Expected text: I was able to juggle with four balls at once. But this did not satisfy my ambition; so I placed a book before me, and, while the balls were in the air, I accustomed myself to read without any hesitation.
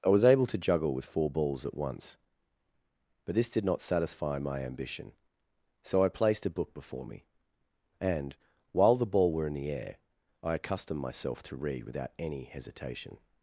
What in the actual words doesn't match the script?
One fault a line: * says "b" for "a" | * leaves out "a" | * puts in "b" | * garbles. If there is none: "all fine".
* says "ball" for "balls"